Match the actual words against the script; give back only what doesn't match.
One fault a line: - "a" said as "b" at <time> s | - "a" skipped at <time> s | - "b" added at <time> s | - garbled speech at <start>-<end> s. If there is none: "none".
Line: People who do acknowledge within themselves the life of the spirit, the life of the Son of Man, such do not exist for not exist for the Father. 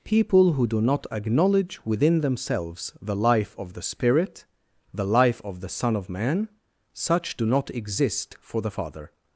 - "not" added at 0.8 s
- "not exist for" skipped at 8.6 s